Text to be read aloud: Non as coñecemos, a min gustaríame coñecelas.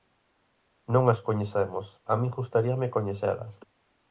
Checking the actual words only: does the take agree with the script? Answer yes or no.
yes